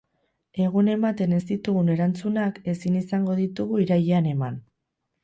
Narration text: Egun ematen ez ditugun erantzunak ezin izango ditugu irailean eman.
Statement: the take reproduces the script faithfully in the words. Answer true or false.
true